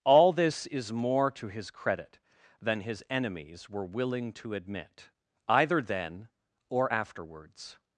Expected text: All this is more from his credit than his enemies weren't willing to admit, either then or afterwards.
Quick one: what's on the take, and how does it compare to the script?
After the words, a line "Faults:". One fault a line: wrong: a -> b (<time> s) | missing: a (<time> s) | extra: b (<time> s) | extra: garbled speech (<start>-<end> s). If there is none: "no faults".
All this is more to his credit than his enemies were willing to admit, either then or afterwards.
Faults:
wrong: from -> to (1.3 s)
wrong: weren't -> were (3.7 s)